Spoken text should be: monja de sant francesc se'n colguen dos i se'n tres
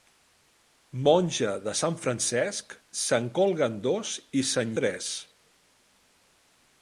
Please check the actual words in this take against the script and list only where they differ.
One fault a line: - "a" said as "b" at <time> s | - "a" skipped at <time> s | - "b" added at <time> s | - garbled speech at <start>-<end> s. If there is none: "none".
none